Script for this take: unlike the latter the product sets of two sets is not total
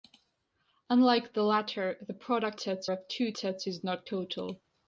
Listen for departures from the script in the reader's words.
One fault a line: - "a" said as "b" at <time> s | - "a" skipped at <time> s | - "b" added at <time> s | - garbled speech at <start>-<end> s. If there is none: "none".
none